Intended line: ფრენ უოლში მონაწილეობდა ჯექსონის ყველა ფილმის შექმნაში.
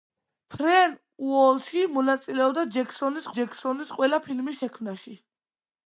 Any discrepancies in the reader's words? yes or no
yes